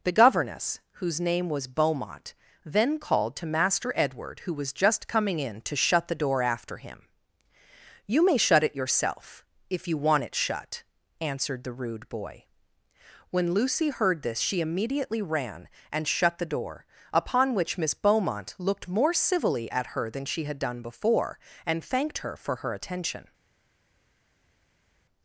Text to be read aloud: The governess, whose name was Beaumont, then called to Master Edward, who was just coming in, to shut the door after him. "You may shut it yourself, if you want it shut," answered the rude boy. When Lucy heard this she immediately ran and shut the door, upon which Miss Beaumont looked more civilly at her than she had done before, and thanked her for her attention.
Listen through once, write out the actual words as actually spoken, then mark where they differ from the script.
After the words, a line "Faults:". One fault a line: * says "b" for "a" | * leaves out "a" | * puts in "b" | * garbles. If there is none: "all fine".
The governess, whose name was Beaumont, then called to Master Edward, who was just coming in, to shut the door after him. "You may shut it yourself, if you want it shut," answered the rude boy. When Lucy heard this she immediately ran and shut the door, upon which Miss Beaumont looked more civilly at her than she had done before, and thanked her for her attention.
Faults:
all fine